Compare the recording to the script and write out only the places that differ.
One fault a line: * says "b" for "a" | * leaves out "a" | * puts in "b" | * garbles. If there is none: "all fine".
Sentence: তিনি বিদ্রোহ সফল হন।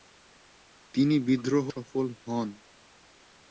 all fine